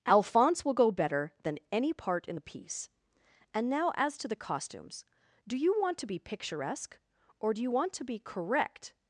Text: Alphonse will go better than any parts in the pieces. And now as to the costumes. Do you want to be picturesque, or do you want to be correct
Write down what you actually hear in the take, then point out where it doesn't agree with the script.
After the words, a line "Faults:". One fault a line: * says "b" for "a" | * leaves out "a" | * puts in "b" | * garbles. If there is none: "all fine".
Alphonse will go better than any part in the piece. And now as to the costumes. Do you want to be picturesque, or do you want to be correct
Faults:
* says "part" for "parts"
* says "piece" for "pieces"